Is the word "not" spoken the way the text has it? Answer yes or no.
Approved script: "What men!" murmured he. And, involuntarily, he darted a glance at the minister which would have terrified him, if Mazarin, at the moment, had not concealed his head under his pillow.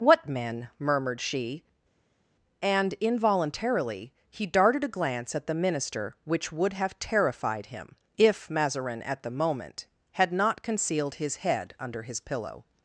yes